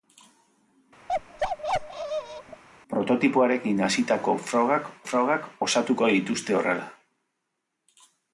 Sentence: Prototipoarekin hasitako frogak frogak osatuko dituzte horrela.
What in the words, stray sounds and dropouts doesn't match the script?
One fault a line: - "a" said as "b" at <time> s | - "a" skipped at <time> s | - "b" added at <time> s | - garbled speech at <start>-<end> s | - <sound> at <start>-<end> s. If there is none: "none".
- bark at 1.1-2.6 s